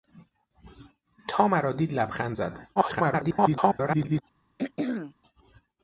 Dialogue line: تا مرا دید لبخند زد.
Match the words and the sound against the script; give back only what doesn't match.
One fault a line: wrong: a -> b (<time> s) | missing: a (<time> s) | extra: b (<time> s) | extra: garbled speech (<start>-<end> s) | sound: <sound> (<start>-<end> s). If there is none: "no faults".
extra: garbled speech (2.8-4.2 s)
sound: throat clearing (4.6-5.1 s)